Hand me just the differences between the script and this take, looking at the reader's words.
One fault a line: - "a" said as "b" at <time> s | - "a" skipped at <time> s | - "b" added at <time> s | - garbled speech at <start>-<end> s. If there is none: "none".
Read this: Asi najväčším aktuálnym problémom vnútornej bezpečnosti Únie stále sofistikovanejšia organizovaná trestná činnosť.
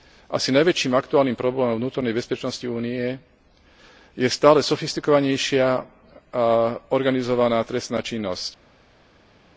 - "je" added at 4.1 s